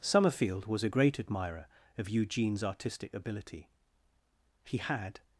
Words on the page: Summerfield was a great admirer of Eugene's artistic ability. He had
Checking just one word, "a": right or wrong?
right